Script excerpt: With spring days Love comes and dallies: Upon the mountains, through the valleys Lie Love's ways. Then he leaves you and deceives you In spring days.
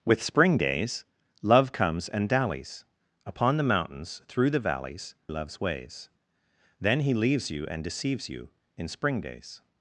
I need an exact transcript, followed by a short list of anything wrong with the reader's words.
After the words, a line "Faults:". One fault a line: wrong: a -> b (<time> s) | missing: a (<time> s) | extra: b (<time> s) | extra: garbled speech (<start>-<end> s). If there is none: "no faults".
With spring days Love comes and dallies: Upon the mountains, through the valleys Love's ways. Then he leaves you and deceives you In spring days.
Faults:
missing: Lie (5.1 s)